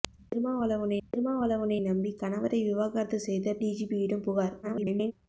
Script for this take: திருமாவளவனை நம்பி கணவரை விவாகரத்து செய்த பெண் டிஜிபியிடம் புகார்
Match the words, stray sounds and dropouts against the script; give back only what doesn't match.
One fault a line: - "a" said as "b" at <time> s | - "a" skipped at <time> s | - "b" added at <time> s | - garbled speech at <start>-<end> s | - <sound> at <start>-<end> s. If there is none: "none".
- "திருமாவளவனை" added at 1.0 s
- "பெண்" skipped at 3.6 s
- garbled speech at 4.6-5.1 s